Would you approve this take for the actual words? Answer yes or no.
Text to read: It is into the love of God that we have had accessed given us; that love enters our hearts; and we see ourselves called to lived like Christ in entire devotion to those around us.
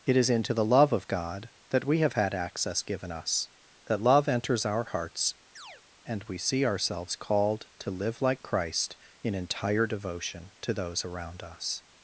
no